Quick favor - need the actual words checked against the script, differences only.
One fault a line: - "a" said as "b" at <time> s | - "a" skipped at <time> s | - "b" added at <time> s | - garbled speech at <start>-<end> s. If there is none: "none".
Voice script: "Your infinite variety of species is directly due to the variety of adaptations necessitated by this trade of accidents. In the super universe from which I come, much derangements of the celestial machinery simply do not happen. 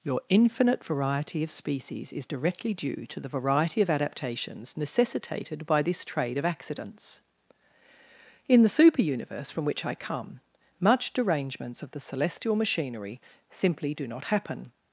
none